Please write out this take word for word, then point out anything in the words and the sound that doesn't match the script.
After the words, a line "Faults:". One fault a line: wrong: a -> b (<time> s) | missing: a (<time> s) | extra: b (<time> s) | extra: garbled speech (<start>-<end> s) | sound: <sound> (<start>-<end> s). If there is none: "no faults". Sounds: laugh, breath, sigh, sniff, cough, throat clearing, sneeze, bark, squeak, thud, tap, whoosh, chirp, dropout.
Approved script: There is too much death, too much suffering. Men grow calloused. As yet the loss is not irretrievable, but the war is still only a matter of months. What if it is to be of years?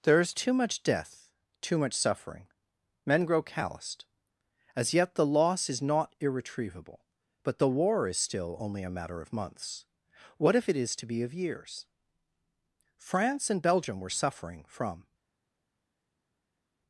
There is too much death, too much suffering. Men grow calloused. As yet the loss is not irretrievable, but the war is still only a matter of months. What if it is to be of years? France and Belgium were suffering from
Faults:
extra: France and Belgium were suffering from (13.0 s)